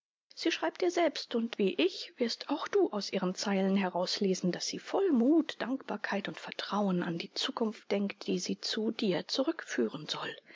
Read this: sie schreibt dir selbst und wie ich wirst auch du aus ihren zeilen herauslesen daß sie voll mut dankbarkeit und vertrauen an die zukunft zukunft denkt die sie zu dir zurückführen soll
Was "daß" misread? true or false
false